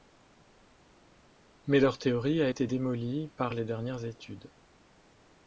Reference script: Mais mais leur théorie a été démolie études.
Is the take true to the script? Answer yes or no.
no